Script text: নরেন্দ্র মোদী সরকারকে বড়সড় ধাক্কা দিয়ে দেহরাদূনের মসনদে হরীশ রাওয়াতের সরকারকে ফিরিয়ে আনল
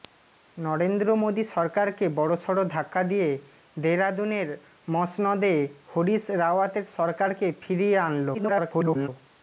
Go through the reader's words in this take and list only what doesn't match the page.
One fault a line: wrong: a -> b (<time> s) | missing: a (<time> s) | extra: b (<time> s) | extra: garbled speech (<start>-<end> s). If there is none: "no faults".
extra: garbled speech (8.3-9.1 s)